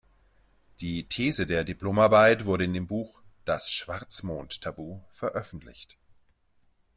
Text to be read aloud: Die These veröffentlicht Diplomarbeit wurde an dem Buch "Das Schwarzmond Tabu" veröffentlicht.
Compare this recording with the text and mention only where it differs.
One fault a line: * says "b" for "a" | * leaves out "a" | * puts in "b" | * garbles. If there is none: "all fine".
* says "der" for "veröffentlicht"
* says "in" for "an"